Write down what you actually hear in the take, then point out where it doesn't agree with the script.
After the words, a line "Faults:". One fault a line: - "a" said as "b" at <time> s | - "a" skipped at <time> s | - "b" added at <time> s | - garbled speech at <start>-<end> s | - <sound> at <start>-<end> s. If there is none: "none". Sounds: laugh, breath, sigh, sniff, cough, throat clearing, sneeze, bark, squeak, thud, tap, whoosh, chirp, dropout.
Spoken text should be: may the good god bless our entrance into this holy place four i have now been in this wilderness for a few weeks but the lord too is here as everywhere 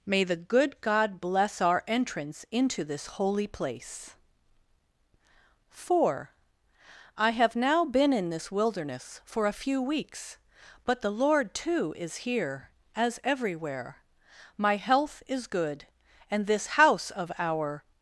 may the good god bless our entrance into this holy place four i have now been in this wilderness for a few weeks but the lord too is here as everywhere my health is good and this house of our
Faults:
- "my health is good and this house of our" added at 14.6 s